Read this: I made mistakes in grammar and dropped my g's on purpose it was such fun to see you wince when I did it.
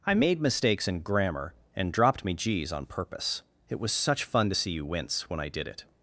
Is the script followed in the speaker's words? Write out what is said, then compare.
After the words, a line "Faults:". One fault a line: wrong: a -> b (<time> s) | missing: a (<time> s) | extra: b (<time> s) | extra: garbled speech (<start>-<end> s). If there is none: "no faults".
I made mistakes in grammar and dropped me g's on purpose it was such fun to see you wince when I did it.
Faults:
wrong: my -> me (2.2 s)